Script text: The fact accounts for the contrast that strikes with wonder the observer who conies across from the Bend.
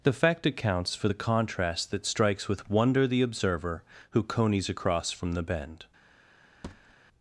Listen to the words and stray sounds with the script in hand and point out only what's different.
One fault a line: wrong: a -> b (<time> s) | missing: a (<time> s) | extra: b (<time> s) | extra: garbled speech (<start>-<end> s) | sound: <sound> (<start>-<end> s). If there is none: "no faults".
sound: thud (6.6-7.0 s)